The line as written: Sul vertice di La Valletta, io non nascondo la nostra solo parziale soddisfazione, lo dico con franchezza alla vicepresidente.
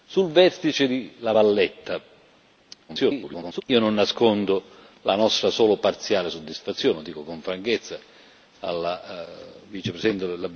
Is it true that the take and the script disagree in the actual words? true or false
true